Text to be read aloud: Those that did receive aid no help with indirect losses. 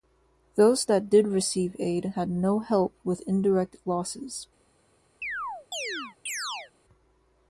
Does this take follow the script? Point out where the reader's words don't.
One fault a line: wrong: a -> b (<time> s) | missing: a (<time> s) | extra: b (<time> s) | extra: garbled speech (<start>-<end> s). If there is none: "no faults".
extra: had (2.1 s)